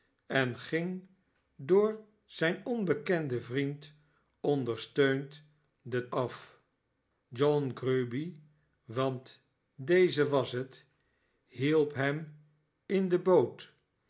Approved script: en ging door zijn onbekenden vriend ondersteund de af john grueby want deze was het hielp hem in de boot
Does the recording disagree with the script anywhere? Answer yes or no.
no